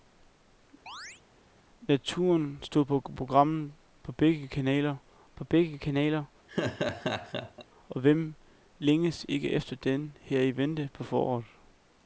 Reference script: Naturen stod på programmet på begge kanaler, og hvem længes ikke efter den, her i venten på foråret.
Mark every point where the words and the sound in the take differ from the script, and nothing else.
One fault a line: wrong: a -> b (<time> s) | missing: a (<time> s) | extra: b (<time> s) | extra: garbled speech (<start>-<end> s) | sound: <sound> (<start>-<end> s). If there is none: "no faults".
sound: chirp (0.9-1.2 s)
extra: på begge kanaler (5.3 s)
sound: laugh (6.5-7.7 s)